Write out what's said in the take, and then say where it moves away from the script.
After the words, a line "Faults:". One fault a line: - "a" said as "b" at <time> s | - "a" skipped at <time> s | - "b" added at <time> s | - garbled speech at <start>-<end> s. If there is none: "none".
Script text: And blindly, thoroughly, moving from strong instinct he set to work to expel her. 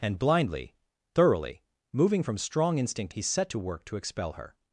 And blindly, thoroughly, moving from strong instinct he set to work to expel her.
Faults:
none